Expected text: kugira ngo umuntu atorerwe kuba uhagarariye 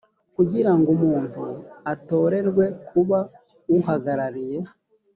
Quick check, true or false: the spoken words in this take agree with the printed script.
true